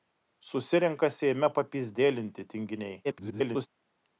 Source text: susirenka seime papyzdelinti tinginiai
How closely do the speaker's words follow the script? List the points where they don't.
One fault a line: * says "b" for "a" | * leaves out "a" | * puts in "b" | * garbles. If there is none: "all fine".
* garbles